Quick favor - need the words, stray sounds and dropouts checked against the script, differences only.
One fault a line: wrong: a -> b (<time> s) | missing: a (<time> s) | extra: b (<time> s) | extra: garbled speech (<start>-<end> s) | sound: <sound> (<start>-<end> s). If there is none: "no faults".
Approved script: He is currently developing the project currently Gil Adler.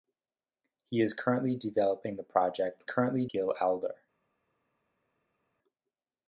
no faults